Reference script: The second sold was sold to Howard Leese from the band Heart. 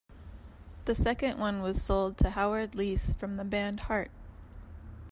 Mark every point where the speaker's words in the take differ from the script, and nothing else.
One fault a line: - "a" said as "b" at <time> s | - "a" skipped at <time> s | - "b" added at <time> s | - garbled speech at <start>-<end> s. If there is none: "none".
- "sold" said as "one" at 1.4 s